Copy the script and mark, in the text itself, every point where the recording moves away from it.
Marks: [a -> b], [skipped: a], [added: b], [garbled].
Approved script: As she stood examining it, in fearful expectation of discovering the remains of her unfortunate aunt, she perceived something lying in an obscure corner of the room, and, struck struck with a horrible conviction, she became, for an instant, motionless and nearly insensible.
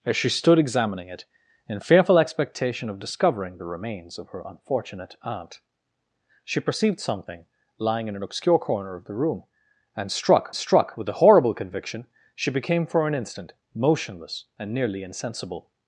As she stood examining it, in fearful expectation of discovering the remains of her unfortunate aunt, she perceived something lying in an obscure corner of the room, and, struck struck with a horrible conviction, she became, for an instant, motionless and nearly insensible.